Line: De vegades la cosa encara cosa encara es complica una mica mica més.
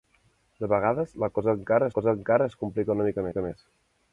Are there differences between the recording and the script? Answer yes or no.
no